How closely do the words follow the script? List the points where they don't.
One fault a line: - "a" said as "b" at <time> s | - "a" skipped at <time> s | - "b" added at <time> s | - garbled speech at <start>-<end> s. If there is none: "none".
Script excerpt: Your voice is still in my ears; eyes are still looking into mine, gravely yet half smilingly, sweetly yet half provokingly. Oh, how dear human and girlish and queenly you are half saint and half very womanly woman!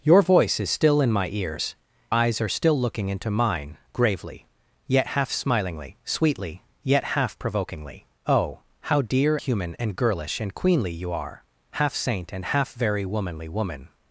none